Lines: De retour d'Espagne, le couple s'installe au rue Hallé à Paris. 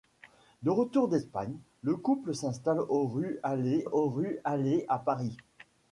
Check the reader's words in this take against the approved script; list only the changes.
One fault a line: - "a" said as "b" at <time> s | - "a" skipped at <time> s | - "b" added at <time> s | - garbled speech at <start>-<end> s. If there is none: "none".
- "au rue Hallé" added at 3.8 s